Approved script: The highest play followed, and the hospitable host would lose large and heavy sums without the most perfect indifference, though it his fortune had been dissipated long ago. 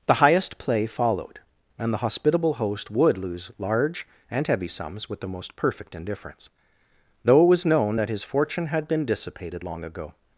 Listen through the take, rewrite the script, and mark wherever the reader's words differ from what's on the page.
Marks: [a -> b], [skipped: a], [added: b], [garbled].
The highest play followed, and the hospitable host would lose large and heavy sums [without -> with] the most perfect indifference, though it [added: was known that] his fortune had been dissipated long ago.